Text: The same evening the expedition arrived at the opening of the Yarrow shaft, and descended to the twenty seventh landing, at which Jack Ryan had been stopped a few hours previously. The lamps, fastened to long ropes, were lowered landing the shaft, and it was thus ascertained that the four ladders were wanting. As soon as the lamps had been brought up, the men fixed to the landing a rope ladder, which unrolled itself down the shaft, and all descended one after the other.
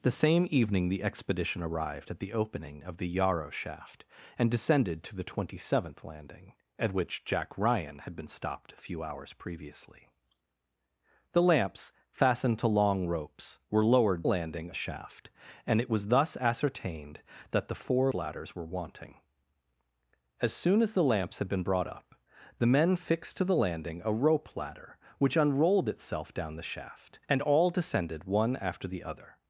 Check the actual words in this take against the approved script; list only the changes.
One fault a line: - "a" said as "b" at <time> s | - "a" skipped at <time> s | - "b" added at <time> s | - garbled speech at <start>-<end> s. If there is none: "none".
none